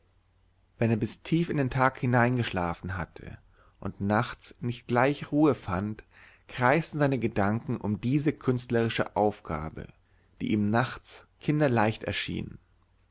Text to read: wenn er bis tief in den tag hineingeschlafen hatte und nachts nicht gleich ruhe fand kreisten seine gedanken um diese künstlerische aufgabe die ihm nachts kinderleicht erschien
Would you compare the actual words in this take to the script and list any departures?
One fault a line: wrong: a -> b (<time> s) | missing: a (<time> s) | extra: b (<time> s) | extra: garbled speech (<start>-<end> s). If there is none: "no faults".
no faults